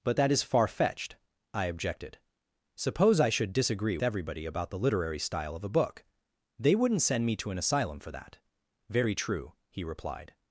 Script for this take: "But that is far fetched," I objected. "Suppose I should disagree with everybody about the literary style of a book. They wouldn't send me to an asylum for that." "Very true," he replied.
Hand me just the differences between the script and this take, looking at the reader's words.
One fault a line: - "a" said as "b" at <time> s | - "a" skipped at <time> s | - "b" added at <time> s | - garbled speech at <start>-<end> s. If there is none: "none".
- "with" skipped at 4.0 s